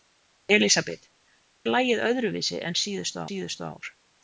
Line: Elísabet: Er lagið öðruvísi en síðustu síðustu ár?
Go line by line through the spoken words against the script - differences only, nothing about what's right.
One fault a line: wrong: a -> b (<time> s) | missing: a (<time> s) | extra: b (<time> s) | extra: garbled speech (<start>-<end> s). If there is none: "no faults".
no faults